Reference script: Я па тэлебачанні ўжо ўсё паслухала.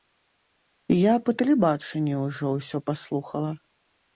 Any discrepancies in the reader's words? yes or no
no